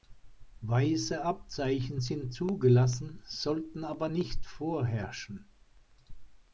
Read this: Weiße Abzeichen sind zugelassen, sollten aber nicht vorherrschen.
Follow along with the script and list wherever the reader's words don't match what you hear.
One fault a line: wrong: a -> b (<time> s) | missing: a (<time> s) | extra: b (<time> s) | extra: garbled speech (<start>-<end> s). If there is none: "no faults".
no faults